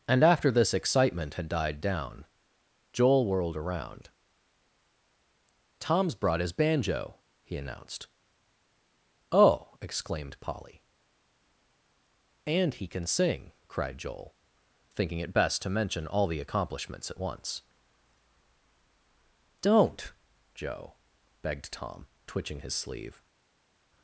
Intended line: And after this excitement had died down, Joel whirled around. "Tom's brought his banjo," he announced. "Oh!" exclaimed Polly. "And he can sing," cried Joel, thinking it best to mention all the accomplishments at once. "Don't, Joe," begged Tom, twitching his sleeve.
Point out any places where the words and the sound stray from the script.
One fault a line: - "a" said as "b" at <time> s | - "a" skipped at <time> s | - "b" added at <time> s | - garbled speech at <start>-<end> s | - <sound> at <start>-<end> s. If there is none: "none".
none